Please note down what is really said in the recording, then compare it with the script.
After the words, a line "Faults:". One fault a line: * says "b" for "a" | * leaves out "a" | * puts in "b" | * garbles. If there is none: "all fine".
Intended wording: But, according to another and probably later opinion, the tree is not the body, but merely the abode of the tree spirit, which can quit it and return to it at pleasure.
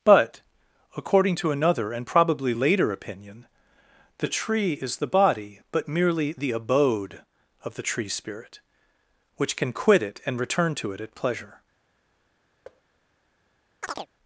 But, according to another and probably later opinion, the tree is the body, but merely the abode of the tree spirit, which can quit it and return to it at pleasure.
Faults:
* leaves out "not"